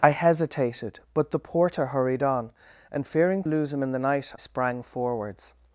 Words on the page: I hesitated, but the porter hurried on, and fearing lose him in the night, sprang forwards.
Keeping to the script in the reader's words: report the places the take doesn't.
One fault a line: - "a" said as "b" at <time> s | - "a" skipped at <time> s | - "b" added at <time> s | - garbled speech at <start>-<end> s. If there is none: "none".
none